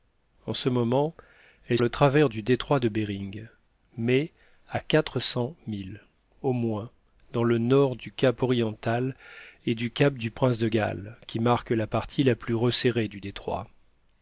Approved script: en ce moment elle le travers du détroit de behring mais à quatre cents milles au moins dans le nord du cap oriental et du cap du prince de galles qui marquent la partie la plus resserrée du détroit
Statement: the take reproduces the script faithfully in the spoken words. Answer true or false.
true